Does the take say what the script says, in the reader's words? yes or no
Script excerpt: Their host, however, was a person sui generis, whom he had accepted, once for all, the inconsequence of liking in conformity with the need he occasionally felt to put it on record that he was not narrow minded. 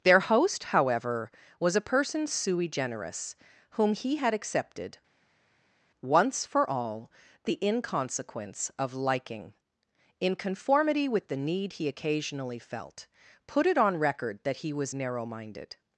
no